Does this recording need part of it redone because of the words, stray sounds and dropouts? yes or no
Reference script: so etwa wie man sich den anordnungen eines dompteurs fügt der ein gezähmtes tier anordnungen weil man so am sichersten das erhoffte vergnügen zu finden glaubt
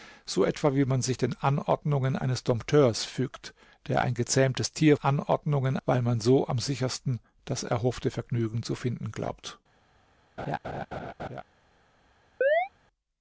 yes